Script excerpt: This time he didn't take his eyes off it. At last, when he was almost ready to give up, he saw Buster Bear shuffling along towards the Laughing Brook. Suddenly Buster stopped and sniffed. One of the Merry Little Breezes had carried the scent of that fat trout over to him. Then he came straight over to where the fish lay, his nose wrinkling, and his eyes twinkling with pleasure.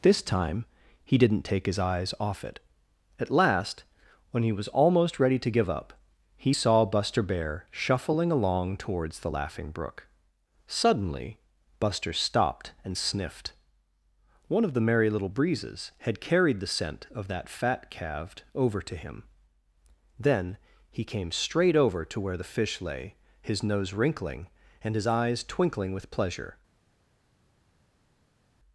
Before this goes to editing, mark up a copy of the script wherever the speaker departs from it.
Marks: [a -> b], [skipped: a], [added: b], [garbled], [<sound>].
This time he didn't take his eyes off it. At last, when he was almost ready to give up, he saw Buster Bear shuffling along towards the Laughing Brook. Suddenly Buster stopped and sniffed. One of the Merry Little Breezes had carried the scent of that fat [trout -> calved] over to him. Then he came straight over to where the fish lay, his nose wrinkling, and his eyes twinkling with pleasure.